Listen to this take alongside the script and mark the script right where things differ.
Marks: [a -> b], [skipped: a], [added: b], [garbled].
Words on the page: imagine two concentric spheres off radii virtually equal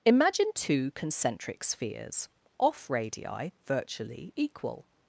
imagine two concentric spheres off radii virtually equal